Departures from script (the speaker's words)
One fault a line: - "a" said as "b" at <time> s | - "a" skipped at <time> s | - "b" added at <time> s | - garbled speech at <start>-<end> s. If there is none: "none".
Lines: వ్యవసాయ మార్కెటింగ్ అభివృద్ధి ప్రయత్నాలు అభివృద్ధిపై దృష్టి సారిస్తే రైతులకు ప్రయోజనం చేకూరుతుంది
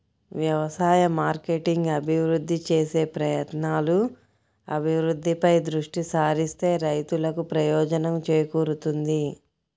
- "చేసే" added at 2.7 s